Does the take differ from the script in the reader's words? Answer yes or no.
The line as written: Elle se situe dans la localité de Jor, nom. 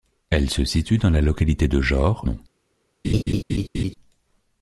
no